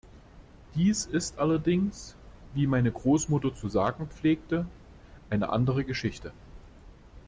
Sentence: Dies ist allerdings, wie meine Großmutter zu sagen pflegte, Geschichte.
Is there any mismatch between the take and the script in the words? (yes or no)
yes